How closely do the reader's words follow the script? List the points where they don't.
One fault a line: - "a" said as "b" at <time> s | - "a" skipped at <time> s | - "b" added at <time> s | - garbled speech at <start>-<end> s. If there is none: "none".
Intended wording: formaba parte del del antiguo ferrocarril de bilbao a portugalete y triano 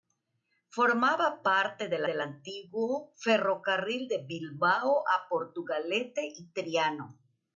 none